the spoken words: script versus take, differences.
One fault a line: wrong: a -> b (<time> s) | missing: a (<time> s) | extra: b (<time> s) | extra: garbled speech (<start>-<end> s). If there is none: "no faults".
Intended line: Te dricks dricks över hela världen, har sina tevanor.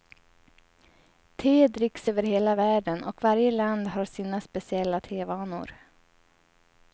missing: dricks (2.1 s)
extra: och varje land (3.0 s)
extra: speciella (4.4 s)